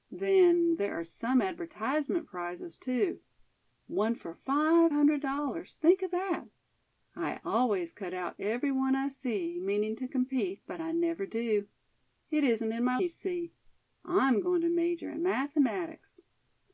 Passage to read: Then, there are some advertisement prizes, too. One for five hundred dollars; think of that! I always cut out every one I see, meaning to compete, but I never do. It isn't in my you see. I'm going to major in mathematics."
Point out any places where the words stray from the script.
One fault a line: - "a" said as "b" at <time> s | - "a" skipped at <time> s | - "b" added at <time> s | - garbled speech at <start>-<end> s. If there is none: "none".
none